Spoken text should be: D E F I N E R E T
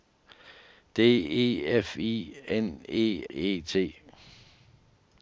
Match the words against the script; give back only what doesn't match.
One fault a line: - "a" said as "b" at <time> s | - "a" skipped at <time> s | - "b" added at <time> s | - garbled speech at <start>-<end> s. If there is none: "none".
- "R" skipped at 3.2 s